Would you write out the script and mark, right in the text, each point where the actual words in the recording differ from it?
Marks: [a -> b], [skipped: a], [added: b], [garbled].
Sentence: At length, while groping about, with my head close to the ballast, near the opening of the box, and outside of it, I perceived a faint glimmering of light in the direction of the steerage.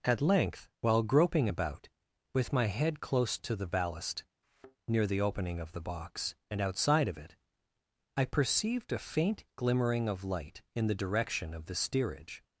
At length, while groping about, with my head close to the ballast, near the opening of the box, and outside of it, I perceived a faint glimmering of light in the direction of the steerage.